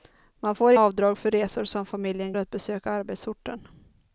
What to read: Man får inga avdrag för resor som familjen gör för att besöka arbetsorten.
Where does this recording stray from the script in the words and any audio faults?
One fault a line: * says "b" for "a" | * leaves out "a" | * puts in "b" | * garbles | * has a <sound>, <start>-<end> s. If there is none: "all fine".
* leaves out "inga"
* leaves out "gör för"